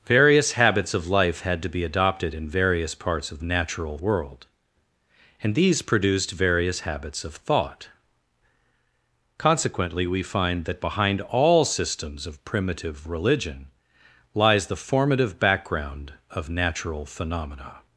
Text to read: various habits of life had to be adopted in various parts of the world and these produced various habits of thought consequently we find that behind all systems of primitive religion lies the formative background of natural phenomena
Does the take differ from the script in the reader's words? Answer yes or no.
yes